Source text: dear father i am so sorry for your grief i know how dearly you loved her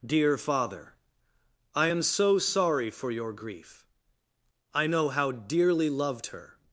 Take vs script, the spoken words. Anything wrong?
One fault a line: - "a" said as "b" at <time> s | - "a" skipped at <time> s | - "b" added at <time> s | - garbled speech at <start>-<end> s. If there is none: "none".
- "you" skipped at 5.9 s